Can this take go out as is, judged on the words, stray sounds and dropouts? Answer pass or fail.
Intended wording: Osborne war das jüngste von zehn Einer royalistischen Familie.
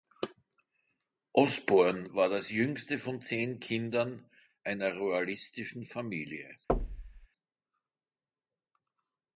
fail